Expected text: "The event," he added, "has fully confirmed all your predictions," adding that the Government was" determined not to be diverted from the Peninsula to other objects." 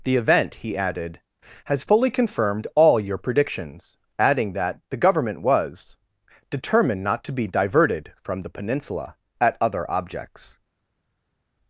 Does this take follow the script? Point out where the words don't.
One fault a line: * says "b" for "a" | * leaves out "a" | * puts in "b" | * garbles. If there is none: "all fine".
* says "at" for "to"